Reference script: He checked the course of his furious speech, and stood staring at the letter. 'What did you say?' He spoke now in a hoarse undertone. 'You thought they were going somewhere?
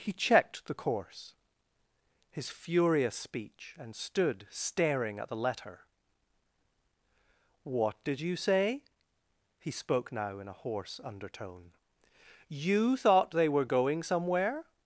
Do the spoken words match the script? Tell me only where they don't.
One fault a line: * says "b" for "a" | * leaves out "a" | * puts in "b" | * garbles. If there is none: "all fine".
* leaves out "of"